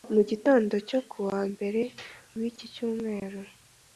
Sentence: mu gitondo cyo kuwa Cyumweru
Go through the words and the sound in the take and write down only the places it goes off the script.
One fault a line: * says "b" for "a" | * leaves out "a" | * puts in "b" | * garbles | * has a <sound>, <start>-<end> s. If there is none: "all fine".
* puts in "Mbere w'iki"